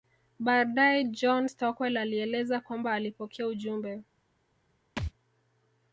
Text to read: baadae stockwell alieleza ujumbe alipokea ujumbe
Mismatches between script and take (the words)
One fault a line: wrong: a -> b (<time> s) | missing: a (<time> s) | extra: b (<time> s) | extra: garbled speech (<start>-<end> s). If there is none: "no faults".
extra: john (1.0 s)
wrong: ujumbe -> kwamba (2.6 s)